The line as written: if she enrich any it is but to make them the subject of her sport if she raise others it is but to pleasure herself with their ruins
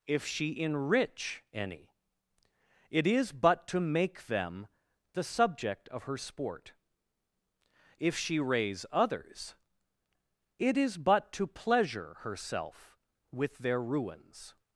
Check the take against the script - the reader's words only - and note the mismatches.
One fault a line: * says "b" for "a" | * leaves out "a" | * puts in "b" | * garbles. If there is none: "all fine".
all fine